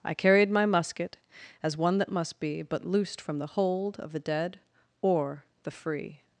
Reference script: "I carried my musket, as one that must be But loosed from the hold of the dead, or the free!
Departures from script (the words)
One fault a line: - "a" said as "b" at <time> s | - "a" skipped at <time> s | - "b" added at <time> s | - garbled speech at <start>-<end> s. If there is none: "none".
none